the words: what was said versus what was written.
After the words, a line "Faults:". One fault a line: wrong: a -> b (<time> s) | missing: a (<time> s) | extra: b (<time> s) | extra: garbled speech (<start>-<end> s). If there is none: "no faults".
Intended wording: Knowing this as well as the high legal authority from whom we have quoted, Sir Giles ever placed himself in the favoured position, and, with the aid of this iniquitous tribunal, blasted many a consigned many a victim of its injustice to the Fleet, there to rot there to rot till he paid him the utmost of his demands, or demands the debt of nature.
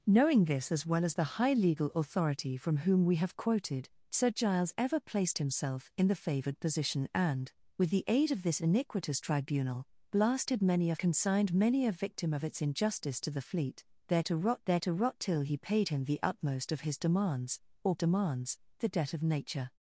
Knowing this as well as the high legal authority from whom we have quoted, Sir Giles ever placed himself in the favoured position, and, with the aid of this iniquitous tribunal, blasted many a consigned many a victim of its injustice to the Fleet, there to rot there to rot till he paid him the utmost of his demands, or demands the debt of nature.
Faults:
no faults